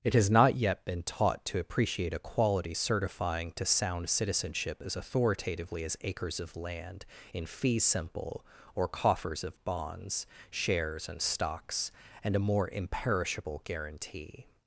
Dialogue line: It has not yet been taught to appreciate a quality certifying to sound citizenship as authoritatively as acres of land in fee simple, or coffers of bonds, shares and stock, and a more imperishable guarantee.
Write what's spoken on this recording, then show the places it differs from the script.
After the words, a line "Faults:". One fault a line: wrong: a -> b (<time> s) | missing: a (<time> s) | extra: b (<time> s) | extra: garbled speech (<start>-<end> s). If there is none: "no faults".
It has not yet been taught to appreciate a quality certifying to sound citizenship as authoritatively as acres of land in fee simple, or coffers of bonds, shares and stocks, and a more imperishable guarantee.
Faults:
wrong: stock -> stocks (11.2 s)